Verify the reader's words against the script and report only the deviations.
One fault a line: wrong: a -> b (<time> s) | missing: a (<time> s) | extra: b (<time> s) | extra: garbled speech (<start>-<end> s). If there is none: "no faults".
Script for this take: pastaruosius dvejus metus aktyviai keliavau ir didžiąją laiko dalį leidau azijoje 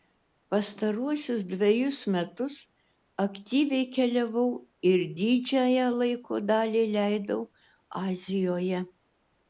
no faults